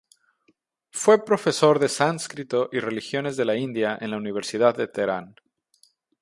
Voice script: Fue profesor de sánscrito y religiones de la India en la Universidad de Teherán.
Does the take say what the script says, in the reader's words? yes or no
yes